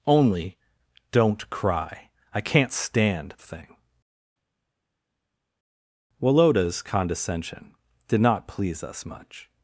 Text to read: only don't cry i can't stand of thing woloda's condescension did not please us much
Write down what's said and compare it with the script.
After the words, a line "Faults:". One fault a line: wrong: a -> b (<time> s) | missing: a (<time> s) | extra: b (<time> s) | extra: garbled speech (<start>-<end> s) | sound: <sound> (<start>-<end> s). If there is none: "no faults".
only don't cry i can't stand of thing woloda's condescension did not please us much
Faults:
no faults